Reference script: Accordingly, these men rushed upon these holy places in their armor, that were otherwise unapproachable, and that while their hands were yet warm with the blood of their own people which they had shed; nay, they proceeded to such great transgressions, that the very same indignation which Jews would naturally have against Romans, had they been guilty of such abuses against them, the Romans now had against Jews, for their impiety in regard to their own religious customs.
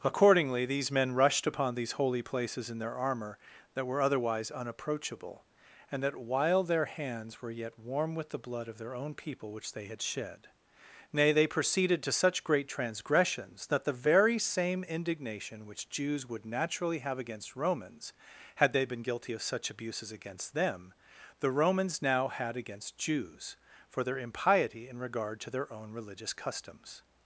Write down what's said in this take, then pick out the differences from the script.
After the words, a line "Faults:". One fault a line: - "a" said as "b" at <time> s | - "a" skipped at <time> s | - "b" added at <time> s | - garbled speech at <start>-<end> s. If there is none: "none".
Accordingly, these men rushed upon these holy places in their armor, that were otherwise unapproachable, and that while their hands were yet warm with the blood of their own people which they had shed; nay, they proceeded to such great transgressions, that the very same indignation which Jews would naturally have against Romans, had they been guilty of such abuses against them, the Romans now had against Jews, for their impiety in regard to their own religious customs.
Faults:
none